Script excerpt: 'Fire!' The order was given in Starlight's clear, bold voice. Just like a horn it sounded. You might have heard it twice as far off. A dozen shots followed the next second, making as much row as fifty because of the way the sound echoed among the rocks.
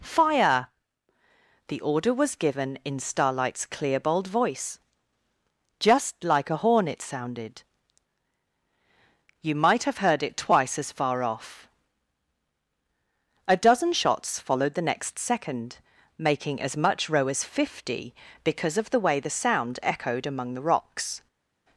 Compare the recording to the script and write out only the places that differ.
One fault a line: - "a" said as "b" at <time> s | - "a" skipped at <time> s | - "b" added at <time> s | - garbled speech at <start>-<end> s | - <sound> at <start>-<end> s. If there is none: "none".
none